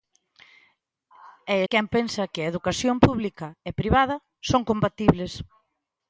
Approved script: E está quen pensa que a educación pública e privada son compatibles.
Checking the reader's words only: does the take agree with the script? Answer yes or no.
no